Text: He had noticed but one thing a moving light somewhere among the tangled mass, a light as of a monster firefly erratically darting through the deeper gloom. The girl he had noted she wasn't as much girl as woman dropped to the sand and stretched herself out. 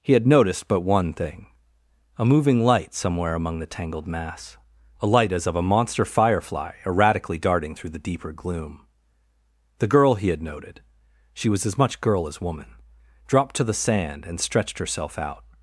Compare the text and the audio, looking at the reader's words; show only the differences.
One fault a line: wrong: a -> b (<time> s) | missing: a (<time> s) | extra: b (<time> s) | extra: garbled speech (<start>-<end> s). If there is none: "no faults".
wrong: wasn't -> was (11.5 s)